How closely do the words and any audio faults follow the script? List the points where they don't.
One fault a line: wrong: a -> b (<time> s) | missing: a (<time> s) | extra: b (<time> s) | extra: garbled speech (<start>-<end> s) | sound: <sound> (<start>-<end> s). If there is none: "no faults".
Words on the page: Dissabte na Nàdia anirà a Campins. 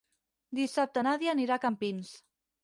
missing: na (1.1 s)